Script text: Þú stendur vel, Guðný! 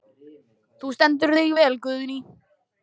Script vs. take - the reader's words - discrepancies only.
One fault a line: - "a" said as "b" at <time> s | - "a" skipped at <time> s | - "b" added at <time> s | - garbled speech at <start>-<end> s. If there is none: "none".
- "þig" added at 1.4 s